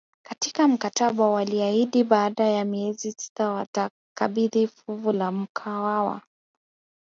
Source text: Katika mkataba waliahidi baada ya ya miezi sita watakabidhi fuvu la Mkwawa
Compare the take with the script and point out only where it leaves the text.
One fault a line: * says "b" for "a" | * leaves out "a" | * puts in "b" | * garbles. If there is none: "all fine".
* leaves out "ya"